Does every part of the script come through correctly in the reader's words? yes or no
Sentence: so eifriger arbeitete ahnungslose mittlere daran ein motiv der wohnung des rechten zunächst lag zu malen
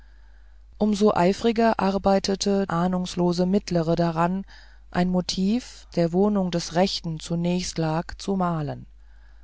yes